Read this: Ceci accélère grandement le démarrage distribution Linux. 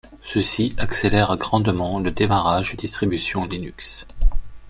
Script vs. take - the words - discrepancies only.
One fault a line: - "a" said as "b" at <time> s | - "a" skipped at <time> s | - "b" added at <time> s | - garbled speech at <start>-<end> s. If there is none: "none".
none